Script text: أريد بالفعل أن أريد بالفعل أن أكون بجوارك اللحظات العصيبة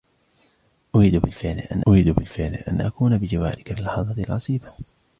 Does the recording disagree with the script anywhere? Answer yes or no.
no